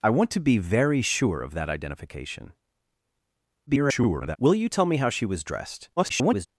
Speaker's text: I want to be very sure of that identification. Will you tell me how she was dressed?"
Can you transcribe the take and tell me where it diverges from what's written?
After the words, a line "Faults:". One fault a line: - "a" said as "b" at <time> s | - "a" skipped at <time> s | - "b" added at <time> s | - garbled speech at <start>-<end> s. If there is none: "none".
I want to be very sure of that identification. [garbled] Will you tell me how she was dressed?" [garbled]
Faults:
- garbled speech at 3.7-4.4 s
- garbled speech at 6.0-6.5 s